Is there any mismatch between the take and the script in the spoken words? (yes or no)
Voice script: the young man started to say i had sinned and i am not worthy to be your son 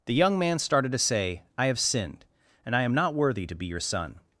yes